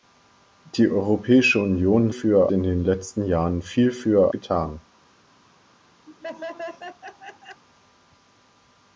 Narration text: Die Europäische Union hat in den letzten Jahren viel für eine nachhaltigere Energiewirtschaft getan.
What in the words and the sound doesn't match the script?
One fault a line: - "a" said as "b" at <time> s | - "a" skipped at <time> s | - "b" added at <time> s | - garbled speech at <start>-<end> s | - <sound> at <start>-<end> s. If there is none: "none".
- "hat" said as "für" at 2.1 s
- "eine nachhaltigere Energiewirtschaft" skipped at 4.3 s
- laugh at 6.1-7.6 s